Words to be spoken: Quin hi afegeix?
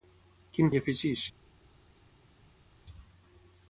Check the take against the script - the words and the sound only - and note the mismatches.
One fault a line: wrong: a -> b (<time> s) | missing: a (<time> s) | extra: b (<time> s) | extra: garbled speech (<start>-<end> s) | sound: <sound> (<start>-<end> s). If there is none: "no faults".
no faults